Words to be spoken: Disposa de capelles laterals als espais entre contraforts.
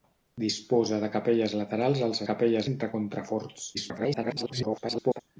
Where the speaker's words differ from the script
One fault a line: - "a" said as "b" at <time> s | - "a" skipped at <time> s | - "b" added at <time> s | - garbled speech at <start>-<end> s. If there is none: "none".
- "espais" said as "capelles" at 2.3 s
- garbled speech at 3.7-5.2 s